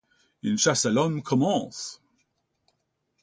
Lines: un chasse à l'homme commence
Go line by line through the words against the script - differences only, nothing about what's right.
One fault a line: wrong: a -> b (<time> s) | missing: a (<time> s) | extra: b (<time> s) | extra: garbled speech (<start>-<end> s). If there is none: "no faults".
wrong: un -> une (0.4 s)